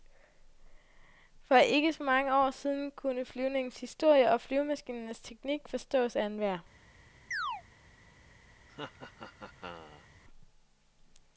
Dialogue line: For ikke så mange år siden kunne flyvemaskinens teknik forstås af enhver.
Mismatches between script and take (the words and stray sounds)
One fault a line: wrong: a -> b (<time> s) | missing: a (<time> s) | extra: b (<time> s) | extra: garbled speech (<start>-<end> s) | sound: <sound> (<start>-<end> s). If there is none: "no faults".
extra: flyvningens historie og (3.2 s)
sound: chirp (7.3-7.6 s)
sound: laugh (8.7-10.1 s)